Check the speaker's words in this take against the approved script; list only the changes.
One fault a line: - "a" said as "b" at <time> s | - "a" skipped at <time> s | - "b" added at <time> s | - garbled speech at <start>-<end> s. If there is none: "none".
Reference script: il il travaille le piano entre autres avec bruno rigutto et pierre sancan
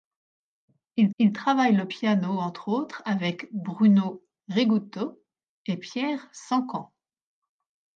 none